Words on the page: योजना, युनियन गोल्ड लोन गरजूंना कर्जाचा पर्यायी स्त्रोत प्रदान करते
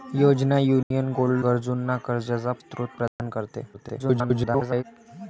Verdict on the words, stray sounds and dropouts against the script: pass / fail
fail